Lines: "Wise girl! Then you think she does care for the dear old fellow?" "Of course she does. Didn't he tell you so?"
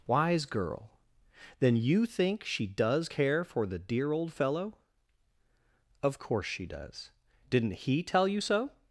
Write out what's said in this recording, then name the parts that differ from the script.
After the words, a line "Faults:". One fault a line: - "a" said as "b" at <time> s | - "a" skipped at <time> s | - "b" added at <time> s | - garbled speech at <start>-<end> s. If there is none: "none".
"Wise girl! Then you think she does care for the dear old fellow?" "Of course she does. Didn't he tell you so?"
Faults:
none